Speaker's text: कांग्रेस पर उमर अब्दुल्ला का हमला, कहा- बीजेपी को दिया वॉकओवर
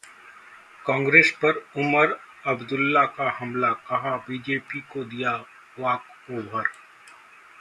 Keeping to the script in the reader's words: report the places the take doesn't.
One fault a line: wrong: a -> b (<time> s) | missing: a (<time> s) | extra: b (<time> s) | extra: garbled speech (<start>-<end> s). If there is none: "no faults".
no faults